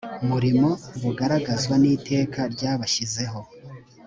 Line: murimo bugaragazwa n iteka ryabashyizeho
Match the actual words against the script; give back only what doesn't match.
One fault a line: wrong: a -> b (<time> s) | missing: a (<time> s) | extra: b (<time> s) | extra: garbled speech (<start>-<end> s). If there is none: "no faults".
no faults